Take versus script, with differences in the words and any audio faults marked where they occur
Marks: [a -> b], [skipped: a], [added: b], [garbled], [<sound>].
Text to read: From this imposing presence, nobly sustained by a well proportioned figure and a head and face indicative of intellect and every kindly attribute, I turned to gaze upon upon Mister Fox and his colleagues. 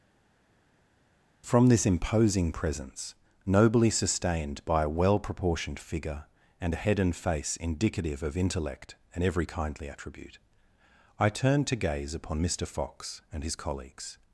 From this imposing presence, nobly sustained by a well proportioned figure and a head and face indicative of intellect and every kindly attribute, I turned to gaze upon [skipped: upon] Mister Fox and his colleagues.